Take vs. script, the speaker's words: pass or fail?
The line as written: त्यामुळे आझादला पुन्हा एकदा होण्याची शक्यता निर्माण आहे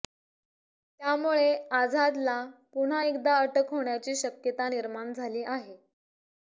fail